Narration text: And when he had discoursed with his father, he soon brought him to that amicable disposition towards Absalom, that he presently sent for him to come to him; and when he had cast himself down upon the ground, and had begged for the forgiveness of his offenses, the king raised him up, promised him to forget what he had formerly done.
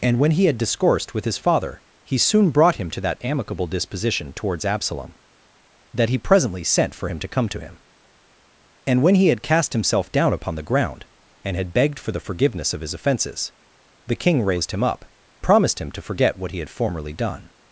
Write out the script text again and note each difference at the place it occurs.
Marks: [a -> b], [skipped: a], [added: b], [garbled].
And when he had discoursed with his father, he soon brought him to that amicable disposition towards Absalom, that he presently sent for him to come to him; and when he had cast himself down upon the ground, and had begged for the forgiveness of his offenses, the king raised him up, promised him to forget what he had formerly done.